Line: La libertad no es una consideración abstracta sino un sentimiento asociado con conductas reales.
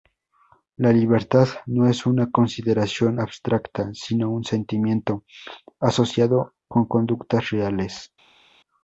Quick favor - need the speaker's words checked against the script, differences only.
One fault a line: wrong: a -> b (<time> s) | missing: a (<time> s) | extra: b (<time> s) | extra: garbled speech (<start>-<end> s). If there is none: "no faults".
no faults